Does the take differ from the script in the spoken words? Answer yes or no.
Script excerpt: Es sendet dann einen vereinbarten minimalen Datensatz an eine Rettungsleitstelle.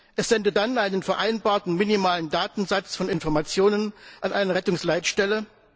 yes